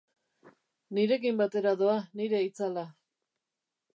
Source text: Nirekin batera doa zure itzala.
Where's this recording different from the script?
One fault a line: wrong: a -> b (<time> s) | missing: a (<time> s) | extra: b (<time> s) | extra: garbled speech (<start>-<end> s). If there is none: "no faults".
wrong: zure -> nire (2.2 s)